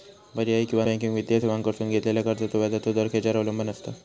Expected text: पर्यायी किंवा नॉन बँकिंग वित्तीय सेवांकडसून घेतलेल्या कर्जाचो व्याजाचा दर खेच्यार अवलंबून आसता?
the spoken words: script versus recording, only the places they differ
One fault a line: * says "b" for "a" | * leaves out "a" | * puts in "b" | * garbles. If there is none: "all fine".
* leaves out "नॉन"